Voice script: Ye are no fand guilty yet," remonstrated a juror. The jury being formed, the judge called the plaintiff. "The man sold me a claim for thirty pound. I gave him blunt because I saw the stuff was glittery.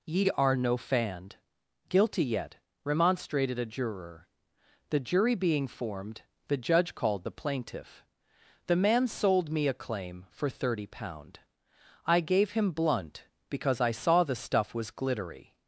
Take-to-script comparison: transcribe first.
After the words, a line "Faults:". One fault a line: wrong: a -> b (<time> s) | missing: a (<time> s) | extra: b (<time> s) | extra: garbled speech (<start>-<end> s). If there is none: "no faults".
Ye are no fand guilty yet," remonstrated a juror. The jury being formed, the judge called the plaintiff. "The man sold me a claim for thirty pound. I gave him blunt because I saw the stuff was glittery.
Faults:
no faults